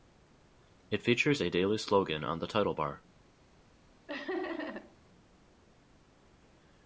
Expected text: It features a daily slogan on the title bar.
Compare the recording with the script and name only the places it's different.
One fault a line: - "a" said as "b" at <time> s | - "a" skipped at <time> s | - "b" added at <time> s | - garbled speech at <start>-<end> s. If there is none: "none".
none